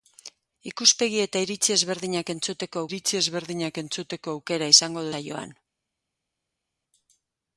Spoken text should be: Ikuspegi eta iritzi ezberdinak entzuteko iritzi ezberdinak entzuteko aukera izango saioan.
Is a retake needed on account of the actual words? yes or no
no